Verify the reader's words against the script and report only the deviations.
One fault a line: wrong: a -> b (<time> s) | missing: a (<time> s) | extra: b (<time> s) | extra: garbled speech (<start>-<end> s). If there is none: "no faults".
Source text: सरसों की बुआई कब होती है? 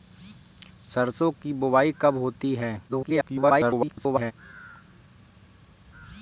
extra: garbled speech (2.9-4.3 s)